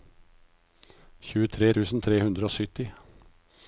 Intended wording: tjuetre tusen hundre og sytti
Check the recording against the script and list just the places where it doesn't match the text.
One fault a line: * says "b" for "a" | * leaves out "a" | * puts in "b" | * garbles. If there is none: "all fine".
* puts in "tre"